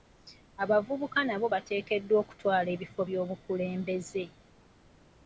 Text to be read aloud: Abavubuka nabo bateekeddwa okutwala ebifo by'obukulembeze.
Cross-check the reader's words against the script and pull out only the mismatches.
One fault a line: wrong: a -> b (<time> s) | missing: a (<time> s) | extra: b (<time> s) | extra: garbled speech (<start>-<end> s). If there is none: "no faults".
no faults